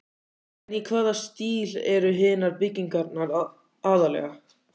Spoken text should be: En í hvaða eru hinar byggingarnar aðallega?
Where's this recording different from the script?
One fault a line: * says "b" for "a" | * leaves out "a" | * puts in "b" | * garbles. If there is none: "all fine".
* puts in "stíl"